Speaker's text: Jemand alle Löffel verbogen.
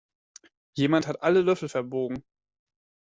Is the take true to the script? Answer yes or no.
no